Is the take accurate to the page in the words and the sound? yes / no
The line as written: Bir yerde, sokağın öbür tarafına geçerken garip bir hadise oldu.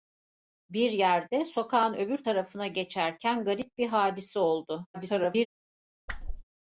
no